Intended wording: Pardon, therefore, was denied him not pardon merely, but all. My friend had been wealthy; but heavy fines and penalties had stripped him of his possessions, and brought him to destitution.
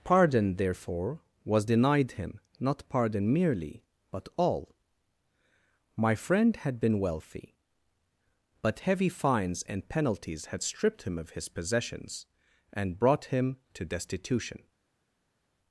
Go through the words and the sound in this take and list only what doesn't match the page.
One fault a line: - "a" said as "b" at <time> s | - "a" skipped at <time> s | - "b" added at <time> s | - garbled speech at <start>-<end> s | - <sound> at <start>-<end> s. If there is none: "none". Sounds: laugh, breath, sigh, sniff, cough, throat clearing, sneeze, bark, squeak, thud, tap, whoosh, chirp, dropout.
none